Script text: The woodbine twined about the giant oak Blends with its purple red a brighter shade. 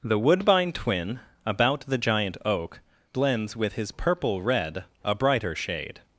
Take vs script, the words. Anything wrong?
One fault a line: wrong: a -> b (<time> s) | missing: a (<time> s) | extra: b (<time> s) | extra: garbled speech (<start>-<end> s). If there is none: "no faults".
wrong: twined -> twin (0.7 s)
wrong: its -> his (3.7 s)